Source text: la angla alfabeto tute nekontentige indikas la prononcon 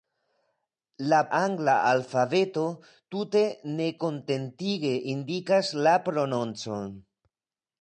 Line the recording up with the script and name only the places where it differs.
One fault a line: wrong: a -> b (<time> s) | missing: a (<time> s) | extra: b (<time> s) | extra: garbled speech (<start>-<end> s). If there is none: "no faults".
no faults